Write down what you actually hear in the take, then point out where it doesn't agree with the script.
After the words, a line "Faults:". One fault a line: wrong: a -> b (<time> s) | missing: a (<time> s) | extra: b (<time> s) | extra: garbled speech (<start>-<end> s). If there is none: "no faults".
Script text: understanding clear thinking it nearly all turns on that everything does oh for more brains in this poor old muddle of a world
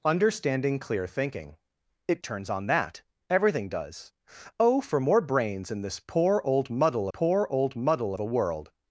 understanding clear thinking it turns on that everything does oh for more brains in this poor old muddle poor old muddle of a world
Faults:
missing: nearly all (2.2 s)
extra: poor old muddle (7.1 s)